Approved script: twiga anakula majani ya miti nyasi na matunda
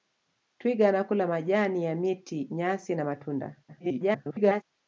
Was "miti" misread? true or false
false